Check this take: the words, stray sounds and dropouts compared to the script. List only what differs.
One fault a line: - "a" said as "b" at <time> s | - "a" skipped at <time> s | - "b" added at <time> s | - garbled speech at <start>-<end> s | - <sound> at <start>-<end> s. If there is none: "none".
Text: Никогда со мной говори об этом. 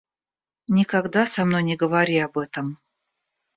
- "не" added at 1.6 s